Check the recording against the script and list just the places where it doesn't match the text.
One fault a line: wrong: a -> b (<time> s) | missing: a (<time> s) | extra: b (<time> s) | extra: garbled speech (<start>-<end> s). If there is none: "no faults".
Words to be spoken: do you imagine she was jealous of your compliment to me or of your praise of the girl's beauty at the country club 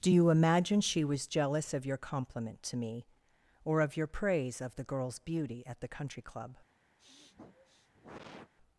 no faults